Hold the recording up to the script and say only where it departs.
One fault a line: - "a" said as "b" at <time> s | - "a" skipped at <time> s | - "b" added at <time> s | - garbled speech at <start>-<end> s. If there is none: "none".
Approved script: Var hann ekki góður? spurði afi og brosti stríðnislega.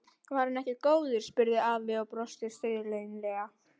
none